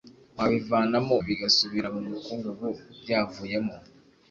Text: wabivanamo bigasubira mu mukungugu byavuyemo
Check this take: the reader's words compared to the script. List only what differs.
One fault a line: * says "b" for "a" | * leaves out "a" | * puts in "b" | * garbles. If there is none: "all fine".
all fine